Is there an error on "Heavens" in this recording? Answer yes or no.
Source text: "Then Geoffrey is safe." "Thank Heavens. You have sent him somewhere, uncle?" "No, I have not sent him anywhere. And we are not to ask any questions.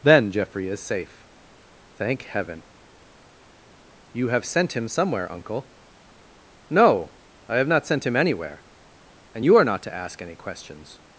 yes